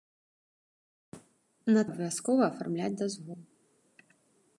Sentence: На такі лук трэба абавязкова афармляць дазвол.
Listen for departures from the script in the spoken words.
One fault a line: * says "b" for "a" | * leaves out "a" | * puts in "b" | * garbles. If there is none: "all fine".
* leaves out "такі лук трэба"